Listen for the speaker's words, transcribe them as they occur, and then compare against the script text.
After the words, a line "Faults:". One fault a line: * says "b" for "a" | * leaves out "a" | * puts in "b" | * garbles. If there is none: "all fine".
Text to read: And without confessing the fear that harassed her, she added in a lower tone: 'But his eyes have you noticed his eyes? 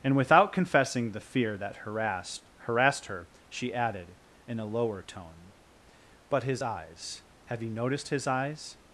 And without confessing the fear that harassed harassed her, she added in a lower tone: 'But his eyes have you noticed his eyes?
Faults:
* puts in "harassed"